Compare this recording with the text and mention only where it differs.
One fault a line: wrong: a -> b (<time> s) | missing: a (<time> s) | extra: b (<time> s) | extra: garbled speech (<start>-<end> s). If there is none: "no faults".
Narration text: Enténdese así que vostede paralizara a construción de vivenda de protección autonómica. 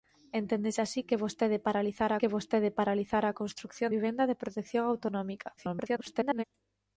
extra: que vostede paralizara (2.2 s)
missing: de (3.9 s)
extra: garbled speech (5.6-6.4 s)